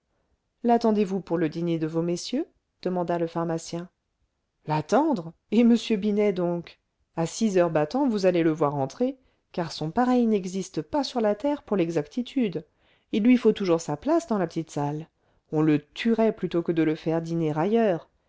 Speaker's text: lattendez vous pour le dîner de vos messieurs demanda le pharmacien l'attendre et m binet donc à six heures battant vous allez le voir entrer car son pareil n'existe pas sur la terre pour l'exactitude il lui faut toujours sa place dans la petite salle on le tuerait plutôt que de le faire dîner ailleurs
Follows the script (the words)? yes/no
yes